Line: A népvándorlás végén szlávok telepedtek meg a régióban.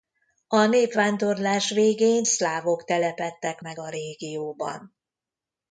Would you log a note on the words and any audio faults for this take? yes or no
no